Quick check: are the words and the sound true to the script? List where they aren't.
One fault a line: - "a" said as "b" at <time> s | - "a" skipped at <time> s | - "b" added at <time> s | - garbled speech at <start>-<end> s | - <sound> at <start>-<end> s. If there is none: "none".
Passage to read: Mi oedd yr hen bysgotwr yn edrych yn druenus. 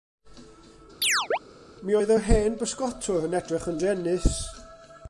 - chirp at 1.0-1.4 s